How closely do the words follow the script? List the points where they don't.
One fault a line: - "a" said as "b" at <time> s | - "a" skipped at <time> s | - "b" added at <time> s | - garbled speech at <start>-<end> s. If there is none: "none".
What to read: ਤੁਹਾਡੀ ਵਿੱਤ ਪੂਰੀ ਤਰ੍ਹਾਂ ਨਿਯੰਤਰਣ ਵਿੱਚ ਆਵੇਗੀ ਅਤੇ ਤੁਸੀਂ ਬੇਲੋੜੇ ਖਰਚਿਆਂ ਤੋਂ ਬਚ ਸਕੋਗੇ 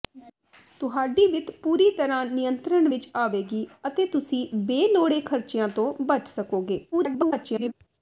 - garbled speech at 6.9-7.7 s